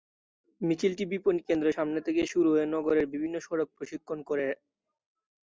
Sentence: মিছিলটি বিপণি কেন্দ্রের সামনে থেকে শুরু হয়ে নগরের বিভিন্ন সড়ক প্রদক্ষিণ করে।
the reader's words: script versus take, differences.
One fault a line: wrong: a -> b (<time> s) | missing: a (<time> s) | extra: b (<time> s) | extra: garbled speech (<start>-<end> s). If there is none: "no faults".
no faults